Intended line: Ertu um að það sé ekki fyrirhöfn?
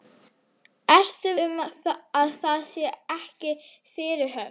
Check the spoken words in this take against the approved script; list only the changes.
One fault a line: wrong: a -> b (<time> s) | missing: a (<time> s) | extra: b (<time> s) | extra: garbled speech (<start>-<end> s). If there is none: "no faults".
no faults